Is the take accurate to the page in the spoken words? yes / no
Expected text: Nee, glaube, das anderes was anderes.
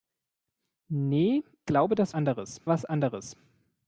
yes